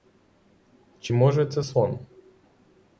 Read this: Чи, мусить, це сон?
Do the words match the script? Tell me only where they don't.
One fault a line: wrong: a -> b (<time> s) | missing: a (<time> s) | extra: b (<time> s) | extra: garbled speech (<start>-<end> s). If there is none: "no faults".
wrong: мусить -> може (1.1 s)